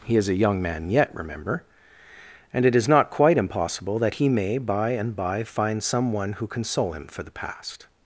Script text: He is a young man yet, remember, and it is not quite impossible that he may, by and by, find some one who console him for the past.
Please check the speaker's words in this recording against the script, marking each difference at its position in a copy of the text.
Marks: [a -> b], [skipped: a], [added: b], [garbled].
He is a young man yet, remember, and it is not quite impossible that he may, by and by, find some one who console him for the past.